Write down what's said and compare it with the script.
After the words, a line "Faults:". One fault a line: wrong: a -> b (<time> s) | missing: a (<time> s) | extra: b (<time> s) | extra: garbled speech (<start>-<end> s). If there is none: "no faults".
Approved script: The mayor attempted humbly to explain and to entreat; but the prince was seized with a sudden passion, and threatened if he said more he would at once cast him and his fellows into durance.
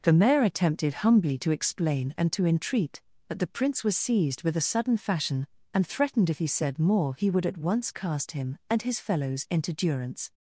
The mayor attempted humbly to explain and to entreat; but the prince was seized with a sudden fashion, and threatened if he said more he would at once cast him and his fellows into durance.
Faults:
wrong: passion -> fashion (5.0 s)